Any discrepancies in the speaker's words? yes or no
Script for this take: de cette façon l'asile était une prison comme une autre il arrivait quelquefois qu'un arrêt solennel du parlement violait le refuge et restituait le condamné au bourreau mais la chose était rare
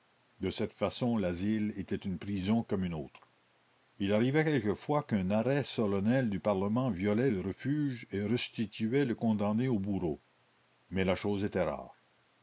no